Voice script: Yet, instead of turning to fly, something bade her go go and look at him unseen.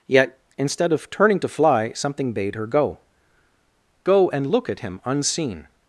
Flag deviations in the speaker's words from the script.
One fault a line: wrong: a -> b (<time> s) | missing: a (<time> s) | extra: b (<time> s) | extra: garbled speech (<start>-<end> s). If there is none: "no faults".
no faults